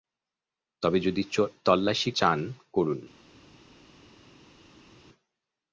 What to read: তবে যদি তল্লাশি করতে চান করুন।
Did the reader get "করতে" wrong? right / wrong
wrong